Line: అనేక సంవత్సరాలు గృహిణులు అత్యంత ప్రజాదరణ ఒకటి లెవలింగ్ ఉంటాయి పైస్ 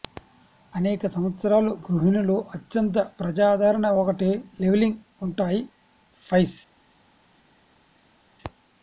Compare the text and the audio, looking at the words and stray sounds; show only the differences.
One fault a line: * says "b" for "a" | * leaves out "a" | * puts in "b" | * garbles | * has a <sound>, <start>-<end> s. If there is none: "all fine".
all fine